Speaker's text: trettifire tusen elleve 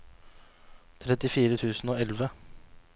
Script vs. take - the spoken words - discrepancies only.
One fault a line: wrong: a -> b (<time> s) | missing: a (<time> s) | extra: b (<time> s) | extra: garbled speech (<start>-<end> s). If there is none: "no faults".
extra: og (1.9 s)